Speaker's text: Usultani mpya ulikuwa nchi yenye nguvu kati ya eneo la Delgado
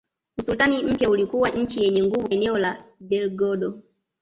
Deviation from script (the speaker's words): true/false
true